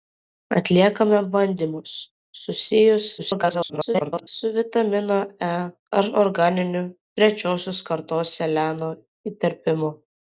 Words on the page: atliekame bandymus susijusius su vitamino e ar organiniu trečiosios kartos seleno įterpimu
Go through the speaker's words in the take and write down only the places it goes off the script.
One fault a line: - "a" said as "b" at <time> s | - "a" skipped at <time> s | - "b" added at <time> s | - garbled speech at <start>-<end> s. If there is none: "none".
- garbled speech at 3.2-4.3 s